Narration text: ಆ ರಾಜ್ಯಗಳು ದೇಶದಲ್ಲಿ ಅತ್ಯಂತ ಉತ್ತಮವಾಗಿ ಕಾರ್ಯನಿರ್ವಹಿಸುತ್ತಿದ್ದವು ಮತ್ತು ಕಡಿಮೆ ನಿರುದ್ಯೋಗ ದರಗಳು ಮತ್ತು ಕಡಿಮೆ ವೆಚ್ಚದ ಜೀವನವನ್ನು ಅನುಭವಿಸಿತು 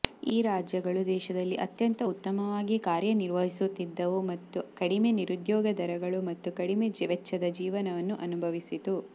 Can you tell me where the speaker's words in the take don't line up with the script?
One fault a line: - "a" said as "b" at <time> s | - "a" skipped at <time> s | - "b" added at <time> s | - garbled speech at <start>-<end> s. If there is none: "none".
- "ಆ" said as "ಈ" at 0.2 s